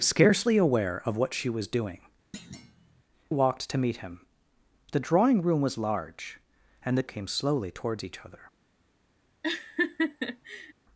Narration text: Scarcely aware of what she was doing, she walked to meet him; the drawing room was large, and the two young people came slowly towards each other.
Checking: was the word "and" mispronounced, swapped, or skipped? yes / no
no